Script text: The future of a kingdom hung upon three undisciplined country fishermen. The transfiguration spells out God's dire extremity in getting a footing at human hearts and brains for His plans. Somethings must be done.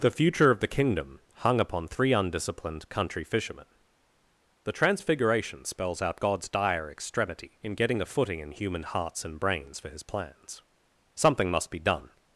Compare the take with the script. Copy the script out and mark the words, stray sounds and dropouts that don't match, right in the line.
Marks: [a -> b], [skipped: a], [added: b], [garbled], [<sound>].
The future of [a -> the] kingdom hung upon three undisciplined country fishermen. The transfiguration spells out God's dire extremity in getting a footing [at -> in] human hearts and brains for His plans. [Somethings -> Something] must be done.